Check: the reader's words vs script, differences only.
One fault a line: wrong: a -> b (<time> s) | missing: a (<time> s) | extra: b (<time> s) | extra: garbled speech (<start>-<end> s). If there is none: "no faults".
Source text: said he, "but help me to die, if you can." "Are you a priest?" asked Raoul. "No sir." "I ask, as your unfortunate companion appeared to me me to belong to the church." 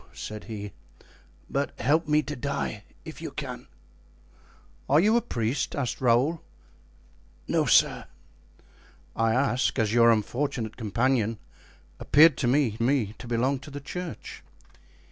no faults